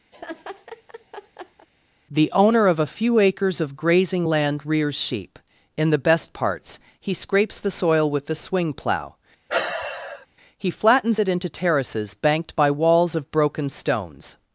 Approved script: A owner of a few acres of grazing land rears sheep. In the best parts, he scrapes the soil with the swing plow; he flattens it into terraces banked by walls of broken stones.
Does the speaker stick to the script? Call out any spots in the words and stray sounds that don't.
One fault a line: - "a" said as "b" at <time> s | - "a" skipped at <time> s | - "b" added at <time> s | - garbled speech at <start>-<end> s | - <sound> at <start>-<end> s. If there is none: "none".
- laugh at 0.1-1.7 s
- "A" said as "The" at 2.1 s
- sigh at 9.5-10.3 s